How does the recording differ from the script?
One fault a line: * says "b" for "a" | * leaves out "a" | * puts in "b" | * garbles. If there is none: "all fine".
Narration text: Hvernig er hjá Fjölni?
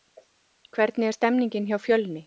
* puts in "stemningin"